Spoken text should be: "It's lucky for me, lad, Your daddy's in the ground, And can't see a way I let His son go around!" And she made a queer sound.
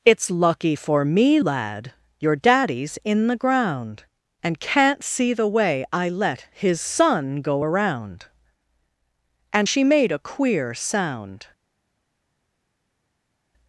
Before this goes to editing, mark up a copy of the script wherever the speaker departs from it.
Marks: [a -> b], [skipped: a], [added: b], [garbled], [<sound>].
"It's lucky for me, lad, Your daddy's in the ground, And can't see [a -> the] way I let His son go around!" And she made a queer sound.